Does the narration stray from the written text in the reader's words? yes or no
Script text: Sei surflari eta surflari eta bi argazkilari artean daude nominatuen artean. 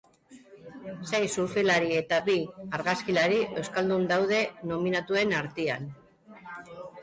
yes